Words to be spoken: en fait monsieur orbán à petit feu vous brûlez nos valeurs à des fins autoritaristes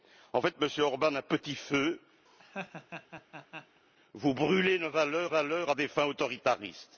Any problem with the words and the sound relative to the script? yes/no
yes